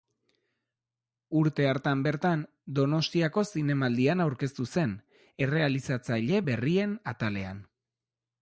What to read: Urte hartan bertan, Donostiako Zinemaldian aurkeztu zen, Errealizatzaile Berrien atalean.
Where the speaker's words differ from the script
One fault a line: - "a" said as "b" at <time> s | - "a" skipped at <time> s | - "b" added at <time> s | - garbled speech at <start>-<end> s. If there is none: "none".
none